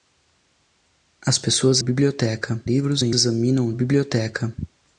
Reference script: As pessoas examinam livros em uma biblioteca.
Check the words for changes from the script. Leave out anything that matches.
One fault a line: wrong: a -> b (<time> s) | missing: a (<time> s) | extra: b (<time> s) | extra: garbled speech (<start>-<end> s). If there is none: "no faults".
wrong: examinam -> biblioteca (1.8 s)
wrong: uma -> examinam (3.1 s)